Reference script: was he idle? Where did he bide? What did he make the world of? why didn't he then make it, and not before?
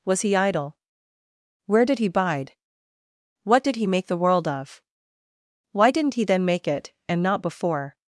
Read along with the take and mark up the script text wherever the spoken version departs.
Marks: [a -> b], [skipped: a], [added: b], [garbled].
was he idle? Where did he bide? What did he make the world of? why didn't he then make it, and not before?